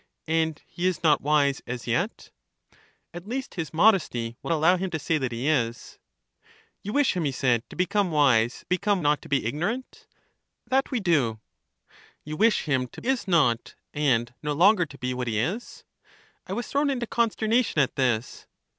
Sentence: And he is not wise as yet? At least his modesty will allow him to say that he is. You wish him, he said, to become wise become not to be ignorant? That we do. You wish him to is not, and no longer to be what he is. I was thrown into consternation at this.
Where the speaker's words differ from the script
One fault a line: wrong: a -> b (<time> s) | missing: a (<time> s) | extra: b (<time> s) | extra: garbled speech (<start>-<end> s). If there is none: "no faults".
no faults